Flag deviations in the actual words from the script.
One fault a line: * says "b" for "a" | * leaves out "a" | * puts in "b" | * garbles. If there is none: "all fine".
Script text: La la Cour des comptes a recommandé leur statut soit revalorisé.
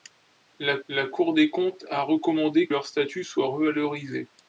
all fine